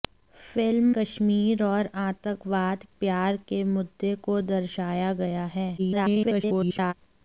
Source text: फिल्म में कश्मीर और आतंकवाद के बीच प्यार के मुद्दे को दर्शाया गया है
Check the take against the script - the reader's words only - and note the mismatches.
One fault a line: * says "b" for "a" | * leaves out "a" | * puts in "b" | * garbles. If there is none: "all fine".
* leaves out "में"
* leaves out "के बीच"
* garbles